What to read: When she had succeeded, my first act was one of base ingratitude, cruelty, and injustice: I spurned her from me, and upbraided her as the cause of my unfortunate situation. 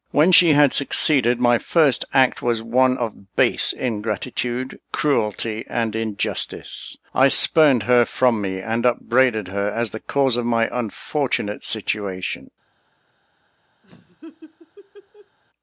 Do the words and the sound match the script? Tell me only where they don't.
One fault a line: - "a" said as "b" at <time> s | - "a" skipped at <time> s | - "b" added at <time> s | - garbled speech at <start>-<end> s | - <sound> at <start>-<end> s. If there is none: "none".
- laugh at 13.8-15.4 s